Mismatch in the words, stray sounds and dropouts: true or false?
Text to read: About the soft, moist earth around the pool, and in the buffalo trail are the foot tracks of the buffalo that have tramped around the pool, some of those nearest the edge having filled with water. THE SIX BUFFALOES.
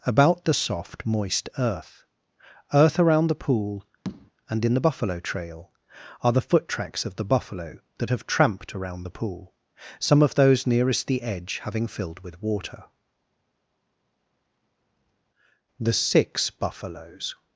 true